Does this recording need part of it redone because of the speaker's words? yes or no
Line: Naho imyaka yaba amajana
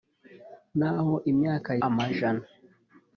yes